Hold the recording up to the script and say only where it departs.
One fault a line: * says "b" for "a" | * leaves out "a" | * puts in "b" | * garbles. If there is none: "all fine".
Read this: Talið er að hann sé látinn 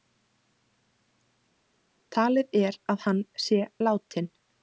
all fine